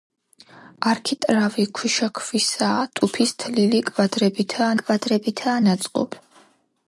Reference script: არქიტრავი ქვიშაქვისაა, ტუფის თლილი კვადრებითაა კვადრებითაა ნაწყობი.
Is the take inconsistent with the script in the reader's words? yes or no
no